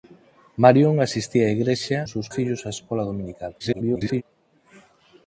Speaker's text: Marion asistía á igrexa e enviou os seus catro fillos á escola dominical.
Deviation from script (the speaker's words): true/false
true